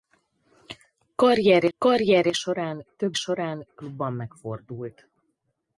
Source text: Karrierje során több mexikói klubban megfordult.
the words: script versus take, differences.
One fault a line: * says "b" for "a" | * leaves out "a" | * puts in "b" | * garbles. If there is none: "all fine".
* puts in "karrierje"
* says "során" for "mexikói"